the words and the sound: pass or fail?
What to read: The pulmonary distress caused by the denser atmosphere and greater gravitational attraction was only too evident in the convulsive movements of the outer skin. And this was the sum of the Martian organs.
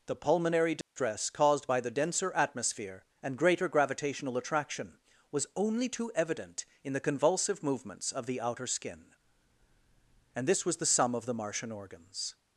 fail